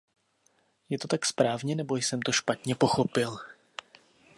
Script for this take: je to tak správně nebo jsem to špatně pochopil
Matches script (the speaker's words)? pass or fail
pass